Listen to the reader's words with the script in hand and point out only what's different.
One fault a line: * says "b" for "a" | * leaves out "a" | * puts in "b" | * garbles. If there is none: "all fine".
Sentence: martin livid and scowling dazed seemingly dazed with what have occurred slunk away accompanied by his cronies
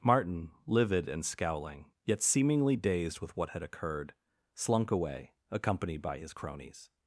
* says "yet" for "dazed"
* says "had" for "have"